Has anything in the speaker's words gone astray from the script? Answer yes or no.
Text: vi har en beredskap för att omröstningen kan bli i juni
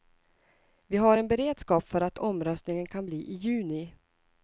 no